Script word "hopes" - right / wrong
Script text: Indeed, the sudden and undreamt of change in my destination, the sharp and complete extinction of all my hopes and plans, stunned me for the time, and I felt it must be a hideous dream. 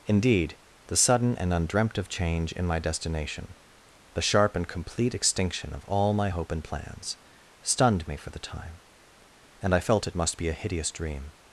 wrong